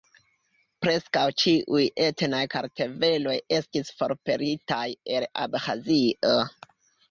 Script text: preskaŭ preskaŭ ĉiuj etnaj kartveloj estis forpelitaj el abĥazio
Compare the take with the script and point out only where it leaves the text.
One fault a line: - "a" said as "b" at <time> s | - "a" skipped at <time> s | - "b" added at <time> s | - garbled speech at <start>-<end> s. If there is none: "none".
- "preskaŭ" skipped at 1.2 s